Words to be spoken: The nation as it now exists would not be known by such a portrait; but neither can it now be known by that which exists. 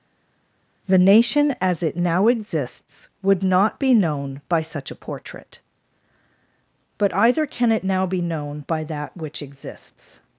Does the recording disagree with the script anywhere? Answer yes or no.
yes